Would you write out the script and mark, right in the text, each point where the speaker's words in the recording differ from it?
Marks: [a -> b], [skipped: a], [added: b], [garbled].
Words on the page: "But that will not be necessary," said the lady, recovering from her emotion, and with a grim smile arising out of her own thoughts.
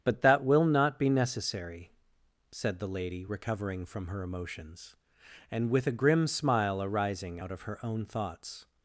"But that will not be necessary," said the lady, recovering from her [emotion, -> emotions] and with a grim smile arising out of her own thoughts.